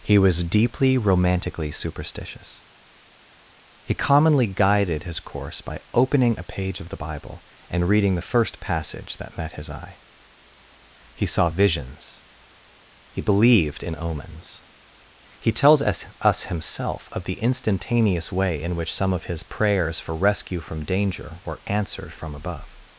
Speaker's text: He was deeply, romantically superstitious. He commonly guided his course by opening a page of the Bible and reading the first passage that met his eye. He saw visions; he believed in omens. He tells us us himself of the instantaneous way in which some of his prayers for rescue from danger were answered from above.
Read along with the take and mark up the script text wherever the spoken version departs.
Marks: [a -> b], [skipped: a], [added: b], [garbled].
He was deeply, romantically superstitious. He commonly guided his course by opening a page of the Bible and reading the first passage that met his eye. He saw visions; he believed in omens. He tells us us himself of the instantaneous way in which some of his prayers for rescue from danger were answered from above.